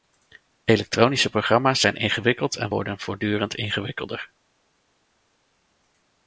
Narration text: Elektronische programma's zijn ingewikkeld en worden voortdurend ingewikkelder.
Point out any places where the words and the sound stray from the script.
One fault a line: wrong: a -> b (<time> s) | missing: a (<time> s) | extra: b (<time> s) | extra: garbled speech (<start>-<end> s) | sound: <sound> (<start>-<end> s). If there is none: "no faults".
no faults